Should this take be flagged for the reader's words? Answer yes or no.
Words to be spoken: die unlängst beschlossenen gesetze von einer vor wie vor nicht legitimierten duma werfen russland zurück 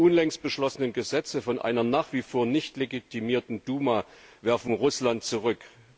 yes